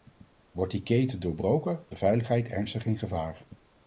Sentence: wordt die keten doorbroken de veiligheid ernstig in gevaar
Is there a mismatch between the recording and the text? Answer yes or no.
no